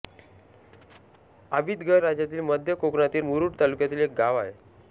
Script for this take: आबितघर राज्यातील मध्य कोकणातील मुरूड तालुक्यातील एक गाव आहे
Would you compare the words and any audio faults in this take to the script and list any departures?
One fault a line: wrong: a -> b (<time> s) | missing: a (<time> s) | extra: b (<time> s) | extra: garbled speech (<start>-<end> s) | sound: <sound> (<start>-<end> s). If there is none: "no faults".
no faults